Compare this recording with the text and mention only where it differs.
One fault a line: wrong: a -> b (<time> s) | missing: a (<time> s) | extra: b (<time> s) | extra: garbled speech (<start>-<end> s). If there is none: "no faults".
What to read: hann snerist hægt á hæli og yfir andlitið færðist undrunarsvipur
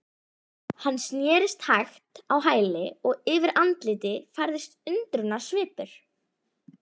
no faults